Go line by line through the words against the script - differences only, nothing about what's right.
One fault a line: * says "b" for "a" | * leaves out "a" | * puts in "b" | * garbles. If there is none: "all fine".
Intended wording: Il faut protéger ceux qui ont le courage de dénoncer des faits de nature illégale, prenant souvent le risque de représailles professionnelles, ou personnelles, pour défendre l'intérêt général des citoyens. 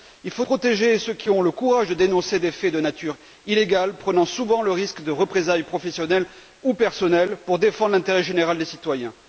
all fine